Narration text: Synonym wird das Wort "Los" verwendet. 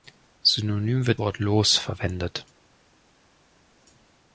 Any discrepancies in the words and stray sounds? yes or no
yes